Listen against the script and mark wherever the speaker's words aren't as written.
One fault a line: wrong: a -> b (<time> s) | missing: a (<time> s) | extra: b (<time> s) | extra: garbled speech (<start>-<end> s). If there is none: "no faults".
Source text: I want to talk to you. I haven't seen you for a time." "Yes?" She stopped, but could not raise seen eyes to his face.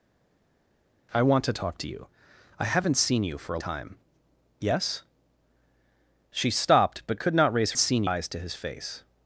no faults